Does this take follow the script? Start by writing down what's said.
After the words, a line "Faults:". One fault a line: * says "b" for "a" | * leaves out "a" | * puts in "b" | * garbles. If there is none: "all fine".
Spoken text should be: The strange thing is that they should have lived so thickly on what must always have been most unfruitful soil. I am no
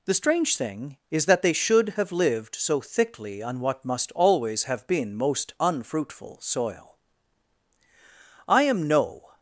The strange thing is that they should have lived so thickly on what must always have been most unfruitful soil. I am no
Faults:
all fine